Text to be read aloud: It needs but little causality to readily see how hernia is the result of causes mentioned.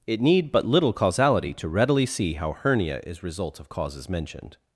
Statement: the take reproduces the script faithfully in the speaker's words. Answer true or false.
false